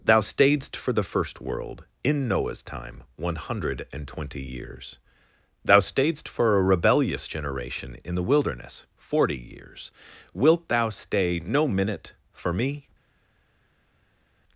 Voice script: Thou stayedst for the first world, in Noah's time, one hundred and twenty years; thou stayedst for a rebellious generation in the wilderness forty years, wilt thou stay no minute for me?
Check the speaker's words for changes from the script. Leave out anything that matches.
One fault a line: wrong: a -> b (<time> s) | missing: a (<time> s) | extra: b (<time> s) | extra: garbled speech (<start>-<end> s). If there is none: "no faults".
no faults